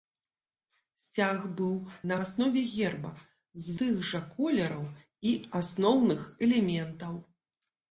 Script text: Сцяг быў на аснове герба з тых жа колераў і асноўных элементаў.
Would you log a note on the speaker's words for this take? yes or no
no